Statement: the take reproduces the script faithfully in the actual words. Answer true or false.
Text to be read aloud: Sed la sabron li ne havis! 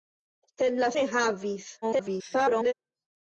false